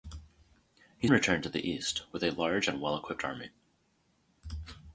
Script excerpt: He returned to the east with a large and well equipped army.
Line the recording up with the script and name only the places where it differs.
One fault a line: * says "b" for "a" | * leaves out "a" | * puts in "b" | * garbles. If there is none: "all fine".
all fine